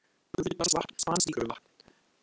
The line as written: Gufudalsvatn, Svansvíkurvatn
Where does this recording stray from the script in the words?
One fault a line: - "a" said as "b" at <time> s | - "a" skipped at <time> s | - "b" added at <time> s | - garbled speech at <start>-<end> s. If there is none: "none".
none